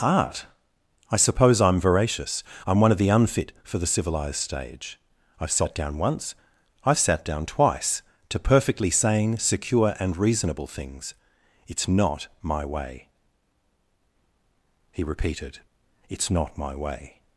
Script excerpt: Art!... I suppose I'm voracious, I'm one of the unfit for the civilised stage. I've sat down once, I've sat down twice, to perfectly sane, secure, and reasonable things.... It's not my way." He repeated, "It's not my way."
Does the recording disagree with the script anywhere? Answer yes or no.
no